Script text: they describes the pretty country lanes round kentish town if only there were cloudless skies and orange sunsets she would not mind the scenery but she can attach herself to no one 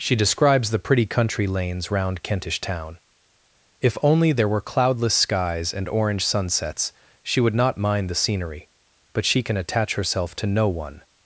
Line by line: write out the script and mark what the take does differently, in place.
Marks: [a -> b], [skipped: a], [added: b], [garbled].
[they -> she] describes the pretty country lanes round kentish town if only there were cloudless skies and orange sunsets she would not mind the scenery but she can attach herself to no one